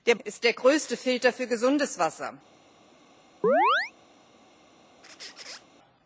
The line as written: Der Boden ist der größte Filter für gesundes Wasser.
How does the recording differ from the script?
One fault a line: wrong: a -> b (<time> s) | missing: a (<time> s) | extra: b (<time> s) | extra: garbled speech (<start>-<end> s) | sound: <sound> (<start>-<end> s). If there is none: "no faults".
missing: Boden (0.1 s)
sound: chirp (3.4-3.9 s)
sound: squeak (5.0-5.6 s)